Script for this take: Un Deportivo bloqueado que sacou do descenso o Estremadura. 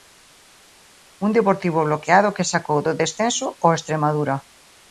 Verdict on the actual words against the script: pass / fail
pass